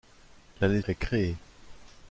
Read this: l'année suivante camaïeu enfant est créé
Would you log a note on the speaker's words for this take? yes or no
yes